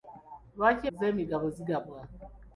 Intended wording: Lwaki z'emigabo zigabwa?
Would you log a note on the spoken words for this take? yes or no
no